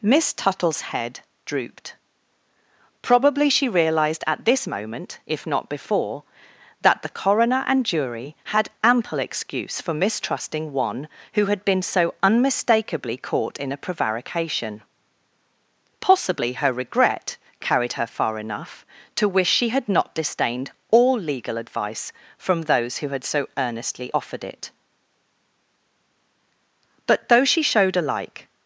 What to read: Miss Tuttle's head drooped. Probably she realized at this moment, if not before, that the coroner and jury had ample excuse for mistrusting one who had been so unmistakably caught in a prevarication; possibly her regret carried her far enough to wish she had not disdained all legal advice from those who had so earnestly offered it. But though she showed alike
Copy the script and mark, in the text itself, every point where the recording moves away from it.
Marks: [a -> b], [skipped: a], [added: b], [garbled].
Miss Tuttle's head drooped. Probably she realized at this moment, if not before, that the coroner and jury had ample excuse for mistrusting one who had been so unmistakably caught in a prevarication; possibly her regret carried her far enough to wish she had not disdained all legal advice from those who had so earnestly offered it. But though she showed alike